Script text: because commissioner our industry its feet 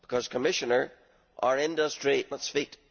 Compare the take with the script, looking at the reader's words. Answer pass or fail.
pass